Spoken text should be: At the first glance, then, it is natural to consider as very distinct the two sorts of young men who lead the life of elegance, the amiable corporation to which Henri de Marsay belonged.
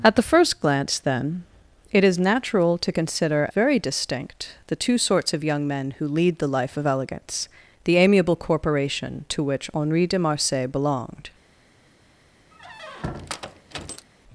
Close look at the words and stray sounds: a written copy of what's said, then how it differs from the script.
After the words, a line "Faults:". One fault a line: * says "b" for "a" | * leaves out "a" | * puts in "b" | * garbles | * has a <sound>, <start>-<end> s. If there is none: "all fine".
At the first glance, then, it is natural to consider very distinct the two sorts of young men who lead the life of elegance, the amiable corporation to which Henri de Marsay belonged.
Faults:
* leaves out "as"
* has a squeak, 12.5-14.1 s